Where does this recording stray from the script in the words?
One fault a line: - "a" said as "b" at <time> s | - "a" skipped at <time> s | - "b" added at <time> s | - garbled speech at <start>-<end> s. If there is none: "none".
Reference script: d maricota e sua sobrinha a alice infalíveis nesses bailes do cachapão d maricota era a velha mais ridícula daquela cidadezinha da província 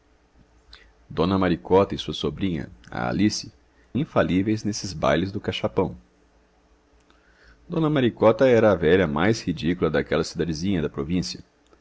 none